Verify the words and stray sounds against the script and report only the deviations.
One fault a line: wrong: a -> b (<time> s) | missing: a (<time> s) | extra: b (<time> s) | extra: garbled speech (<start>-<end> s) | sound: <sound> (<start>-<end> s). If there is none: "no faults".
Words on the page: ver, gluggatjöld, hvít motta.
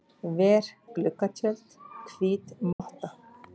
sound: dropout (2.7-2.8 s)